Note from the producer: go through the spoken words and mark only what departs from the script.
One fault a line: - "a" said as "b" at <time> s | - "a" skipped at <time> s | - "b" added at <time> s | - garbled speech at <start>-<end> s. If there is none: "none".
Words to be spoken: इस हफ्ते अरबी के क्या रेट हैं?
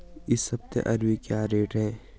- "के" skipped at 1.2 s